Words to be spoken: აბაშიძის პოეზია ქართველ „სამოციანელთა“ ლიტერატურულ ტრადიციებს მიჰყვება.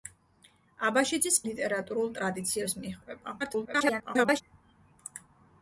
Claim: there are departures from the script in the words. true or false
true